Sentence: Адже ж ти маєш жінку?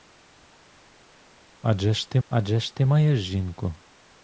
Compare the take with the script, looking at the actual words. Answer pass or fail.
fail